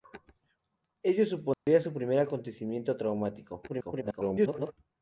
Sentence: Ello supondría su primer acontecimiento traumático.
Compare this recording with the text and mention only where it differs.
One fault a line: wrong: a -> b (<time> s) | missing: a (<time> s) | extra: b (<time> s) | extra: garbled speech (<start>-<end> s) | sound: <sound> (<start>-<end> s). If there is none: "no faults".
sound: dropout (1.5-1.7 s)
extra: garbled speech (3.7-4.7 s)